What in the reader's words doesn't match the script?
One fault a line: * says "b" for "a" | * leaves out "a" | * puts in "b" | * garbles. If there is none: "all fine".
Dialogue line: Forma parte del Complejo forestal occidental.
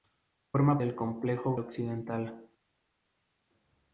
* leaves out "parte"
* leaves out "forestal"